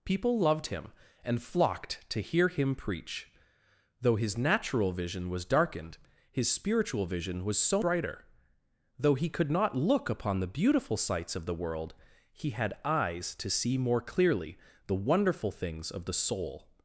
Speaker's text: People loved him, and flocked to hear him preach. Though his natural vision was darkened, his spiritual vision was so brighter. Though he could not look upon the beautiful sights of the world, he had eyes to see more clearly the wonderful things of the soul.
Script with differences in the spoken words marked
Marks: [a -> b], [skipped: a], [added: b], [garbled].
People loved him, and flocked to hear him preach. Though his natural vision was darkened, his spiritual vision was so brighter. Though he could not look upon the beautiful sights of the world, he had eyes to see more clearly the wonderful things of the soul.